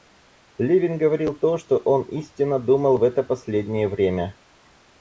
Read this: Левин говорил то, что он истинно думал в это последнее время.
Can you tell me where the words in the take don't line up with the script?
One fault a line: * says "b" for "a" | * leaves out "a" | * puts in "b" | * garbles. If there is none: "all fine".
all fine